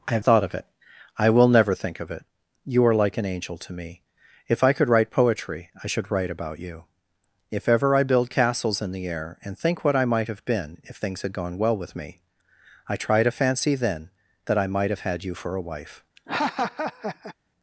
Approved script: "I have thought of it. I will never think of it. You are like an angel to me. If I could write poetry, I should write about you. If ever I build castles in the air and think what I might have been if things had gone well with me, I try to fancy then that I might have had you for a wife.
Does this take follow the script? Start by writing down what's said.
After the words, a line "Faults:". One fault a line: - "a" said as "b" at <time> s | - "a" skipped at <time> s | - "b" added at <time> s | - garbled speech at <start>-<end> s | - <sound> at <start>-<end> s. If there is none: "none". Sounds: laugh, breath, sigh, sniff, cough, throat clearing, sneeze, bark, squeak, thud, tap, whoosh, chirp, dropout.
"I have thought of it. I will never think of it. You are like an angel to me. If I could write poetry, I should write about you. If ever I build castles in the air and think what I might have been if things had gone well with me, I try to fancy then that I might have had you for a wife.
Faults:
- laugh at 16.2-17.3 s